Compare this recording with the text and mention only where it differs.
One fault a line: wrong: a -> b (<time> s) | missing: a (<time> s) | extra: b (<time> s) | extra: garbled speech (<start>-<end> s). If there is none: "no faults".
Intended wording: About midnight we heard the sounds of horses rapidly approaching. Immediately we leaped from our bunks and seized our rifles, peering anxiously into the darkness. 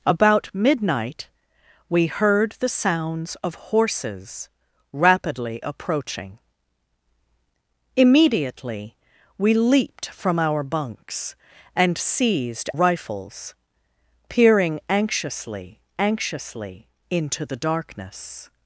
missing: our (12.7 s)
extra: anxiously (16.0 s)